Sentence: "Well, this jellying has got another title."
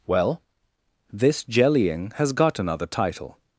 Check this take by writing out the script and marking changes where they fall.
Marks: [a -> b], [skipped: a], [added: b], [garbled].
"Well, this jellying has got another title."